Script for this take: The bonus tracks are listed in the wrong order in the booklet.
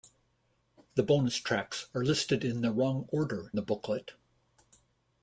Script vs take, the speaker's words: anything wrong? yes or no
yes